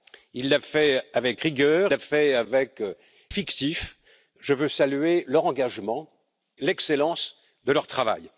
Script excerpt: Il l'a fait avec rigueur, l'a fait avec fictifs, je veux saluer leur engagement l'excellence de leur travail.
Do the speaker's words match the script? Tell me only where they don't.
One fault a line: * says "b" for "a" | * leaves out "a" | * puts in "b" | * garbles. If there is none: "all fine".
all fine